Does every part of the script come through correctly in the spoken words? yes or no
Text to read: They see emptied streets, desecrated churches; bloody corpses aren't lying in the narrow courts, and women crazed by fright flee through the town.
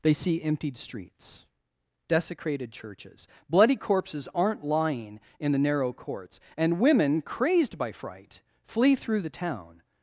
yes